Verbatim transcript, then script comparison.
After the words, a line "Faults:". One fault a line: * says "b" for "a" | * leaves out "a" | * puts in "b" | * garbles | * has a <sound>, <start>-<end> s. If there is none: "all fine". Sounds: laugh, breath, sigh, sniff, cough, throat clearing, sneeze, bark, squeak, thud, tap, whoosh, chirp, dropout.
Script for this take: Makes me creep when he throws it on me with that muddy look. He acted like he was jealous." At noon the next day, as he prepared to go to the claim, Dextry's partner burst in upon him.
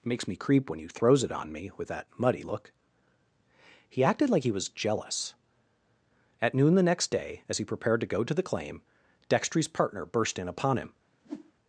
Makes me creep when he throws it on me with that muddy look. He acted like he was jealous." At noon the next day, as he prepared to go to the claim, Dextry's partner burst in upon him.
Faults:
* has a whoosh, 11.2-11.5 s